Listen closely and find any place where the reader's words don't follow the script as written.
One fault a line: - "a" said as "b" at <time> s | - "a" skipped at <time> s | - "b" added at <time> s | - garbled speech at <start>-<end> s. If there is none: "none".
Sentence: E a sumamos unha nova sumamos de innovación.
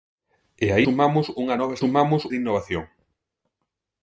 none